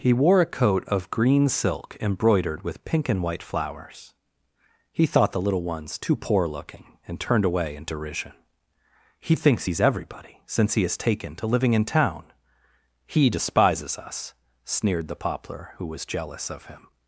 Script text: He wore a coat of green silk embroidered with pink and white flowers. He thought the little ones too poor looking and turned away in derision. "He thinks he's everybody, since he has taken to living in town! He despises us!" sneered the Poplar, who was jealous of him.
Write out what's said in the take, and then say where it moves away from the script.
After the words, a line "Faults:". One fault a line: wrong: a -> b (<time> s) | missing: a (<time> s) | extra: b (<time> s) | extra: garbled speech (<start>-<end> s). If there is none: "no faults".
He wore a coat of green silk embroidered with pink and white flowers. He thought the little ones too poor looking and turned away in derision. "He thinks he's everybody, since he has taken to living in town! He despises us!" sneered the Poplar, who was jealous of him.
Faults:
no faults